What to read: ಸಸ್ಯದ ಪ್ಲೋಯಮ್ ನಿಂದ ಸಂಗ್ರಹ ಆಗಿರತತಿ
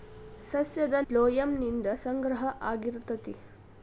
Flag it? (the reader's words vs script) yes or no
no